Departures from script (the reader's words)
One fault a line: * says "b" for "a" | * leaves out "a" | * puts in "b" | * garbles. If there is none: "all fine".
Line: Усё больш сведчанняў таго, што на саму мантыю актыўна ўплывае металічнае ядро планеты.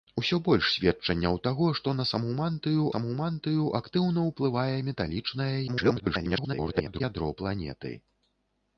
* puts in "саму мантыю"
* garbles